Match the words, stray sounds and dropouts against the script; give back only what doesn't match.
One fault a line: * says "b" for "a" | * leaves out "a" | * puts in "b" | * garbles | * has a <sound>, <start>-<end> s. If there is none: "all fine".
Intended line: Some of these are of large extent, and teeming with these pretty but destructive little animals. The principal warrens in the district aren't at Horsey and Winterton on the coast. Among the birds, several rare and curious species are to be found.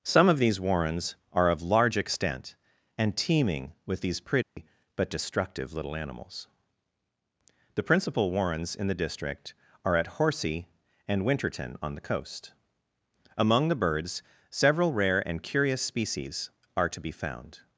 * puts in "warrens"
* has a dropout, 4.4-4.6 s
* says "are" for "aren't"